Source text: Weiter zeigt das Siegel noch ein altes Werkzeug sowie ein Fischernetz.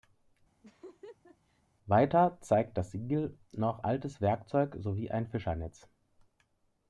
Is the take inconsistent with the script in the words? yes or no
yes